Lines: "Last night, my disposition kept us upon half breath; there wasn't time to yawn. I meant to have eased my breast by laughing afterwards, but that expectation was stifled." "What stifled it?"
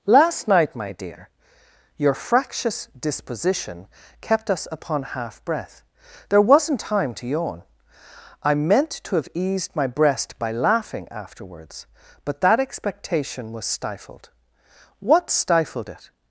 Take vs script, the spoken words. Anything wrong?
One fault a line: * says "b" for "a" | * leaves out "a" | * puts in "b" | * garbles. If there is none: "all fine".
* puts in "dear your fractious"